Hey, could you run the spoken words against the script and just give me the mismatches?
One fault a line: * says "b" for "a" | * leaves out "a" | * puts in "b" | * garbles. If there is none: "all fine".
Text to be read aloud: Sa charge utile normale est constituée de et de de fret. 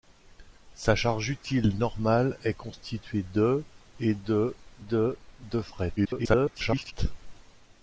* puts in "de"
* garbles